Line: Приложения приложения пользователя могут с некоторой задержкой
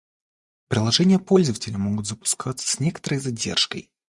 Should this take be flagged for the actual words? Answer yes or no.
yes